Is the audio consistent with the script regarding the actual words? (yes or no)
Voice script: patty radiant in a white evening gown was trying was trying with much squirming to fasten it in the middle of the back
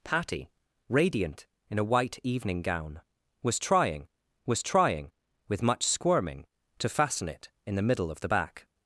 yes